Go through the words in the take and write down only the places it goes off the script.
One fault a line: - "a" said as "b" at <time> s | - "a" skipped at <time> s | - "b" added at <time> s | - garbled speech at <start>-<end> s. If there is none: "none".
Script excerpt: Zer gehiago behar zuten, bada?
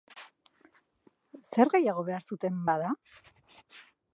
none